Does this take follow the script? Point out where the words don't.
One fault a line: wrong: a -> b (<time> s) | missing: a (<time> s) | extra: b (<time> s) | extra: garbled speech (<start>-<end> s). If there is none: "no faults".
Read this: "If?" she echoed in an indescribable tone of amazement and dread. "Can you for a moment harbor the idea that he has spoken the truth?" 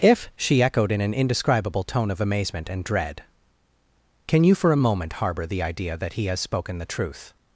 no faults